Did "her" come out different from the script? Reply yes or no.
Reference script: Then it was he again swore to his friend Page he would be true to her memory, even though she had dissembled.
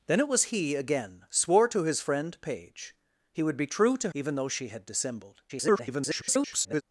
yes